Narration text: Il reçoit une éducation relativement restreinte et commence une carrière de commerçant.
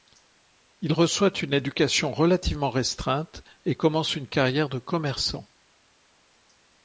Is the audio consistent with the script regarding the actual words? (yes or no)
yes